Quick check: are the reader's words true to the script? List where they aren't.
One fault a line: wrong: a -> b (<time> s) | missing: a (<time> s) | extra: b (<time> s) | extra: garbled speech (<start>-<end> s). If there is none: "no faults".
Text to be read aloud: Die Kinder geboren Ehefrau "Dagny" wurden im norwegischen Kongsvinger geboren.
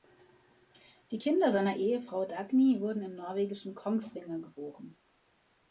wrong: geboren -> seiner (1.5 s)